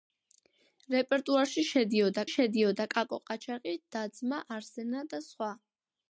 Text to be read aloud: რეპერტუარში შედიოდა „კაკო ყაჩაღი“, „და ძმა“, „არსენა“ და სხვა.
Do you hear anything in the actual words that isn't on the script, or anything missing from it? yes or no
yes